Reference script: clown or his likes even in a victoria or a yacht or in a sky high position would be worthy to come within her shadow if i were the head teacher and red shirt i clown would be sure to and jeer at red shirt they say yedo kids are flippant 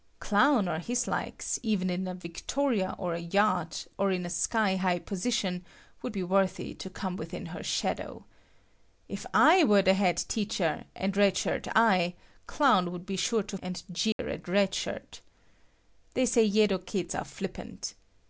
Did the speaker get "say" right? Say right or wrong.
right